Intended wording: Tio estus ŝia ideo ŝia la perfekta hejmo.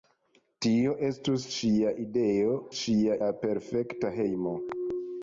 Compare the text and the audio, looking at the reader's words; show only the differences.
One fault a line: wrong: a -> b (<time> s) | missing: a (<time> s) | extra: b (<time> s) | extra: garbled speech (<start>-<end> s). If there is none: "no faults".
no faults